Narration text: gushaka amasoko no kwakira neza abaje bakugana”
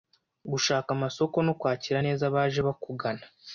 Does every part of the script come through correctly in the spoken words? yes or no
yes